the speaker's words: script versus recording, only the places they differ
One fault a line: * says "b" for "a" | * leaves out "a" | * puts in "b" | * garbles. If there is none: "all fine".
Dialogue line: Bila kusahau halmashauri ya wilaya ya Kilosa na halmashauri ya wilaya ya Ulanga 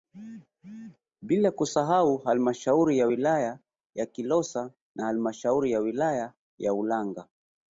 all fine